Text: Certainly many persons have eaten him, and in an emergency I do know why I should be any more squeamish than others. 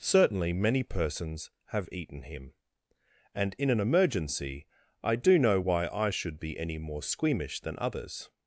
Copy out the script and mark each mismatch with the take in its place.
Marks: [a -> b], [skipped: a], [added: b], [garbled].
Certainly many persons have eaten him, and in an emergency I do know why I should be any more squeamish than others.